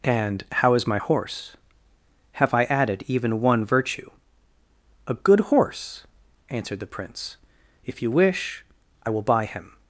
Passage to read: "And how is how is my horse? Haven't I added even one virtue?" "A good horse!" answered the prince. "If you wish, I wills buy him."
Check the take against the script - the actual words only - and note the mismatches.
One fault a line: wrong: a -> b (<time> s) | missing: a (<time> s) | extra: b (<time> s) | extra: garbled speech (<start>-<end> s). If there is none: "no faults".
missing: how is (0.9 s)
wrong: Haven't -> Have (2.3 s)
wrong: wills -> will (9.1 s)